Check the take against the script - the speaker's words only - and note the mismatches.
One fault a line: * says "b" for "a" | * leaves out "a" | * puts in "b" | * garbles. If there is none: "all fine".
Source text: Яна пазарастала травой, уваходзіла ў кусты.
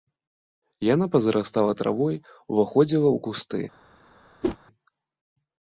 all fine